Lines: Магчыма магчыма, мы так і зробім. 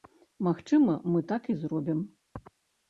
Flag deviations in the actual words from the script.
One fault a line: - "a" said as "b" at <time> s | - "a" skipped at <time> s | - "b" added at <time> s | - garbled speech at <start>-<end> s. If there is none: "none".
- "магчыма" skipped at 0.9 s